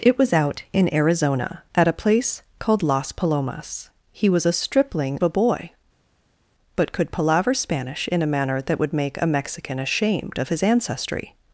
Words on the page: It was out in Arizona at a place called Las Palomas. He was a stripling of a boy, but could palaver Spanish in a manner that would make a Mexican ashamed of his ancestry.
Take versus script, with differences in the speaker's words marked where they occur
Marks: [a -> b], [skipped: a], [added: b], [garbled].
It was out in Arizona at a place called Las Palomas. He was a stripling [skipped: of] a boy, but could palaver Spanish in a manner that would make a Mexican ashamed of his ancestry.